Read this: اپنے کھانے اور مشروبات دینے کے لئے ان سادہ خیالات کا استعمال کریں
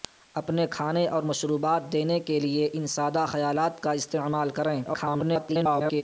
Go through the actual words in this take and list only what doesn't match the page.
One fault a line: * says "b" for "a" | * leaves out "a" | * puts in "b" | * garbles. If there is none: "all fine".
* garbles